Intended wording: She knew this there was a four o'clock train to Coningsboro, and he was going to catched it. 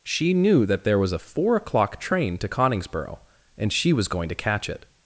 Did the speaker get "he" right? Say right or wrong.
wrong